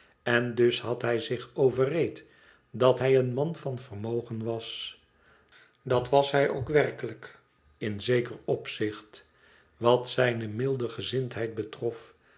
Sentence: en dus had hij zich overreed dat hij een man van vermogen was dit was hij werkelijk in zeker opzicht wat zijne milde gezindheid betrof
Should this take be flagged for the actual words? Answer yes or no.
yes